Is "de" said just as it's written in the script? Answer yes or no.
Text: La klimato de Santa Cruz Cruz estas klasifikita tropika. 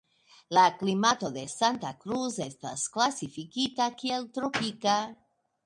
yes